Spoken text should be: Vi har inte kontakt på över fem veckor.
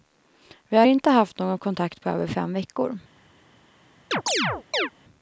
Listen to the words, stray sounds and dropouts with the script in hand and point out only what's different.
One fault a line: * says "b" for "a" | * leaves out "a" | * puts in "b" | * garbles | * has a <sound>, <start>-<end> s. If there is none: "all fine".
* puts in "haft någon"
* has a chirp, 4.1-4.9 s